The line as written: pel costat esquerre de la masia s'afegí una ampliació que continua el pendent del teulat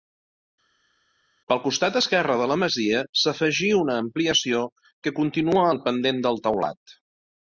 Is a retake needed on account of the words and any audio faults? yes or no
no